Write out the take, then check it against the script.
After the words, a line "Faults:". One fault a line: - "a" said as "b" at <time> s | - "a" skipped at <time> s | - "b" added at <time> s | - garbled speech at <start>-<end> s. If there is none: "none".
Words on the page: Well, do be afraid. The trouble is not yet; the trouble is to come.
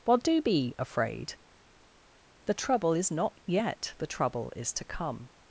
Well, do be afraid. The trouble is not yet; the trouble is to come.
Faults:
none